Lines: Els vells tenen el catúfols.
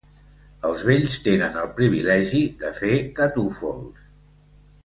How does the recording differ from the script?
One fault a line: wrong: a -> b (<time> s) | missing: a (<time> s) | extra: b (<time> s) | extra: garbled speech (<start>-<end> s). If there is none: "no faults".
extra: privilegi de fer (1.8 s)